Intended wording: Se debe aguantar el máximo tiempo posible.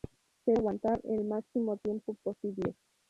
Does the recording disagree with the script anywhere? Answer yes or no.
yes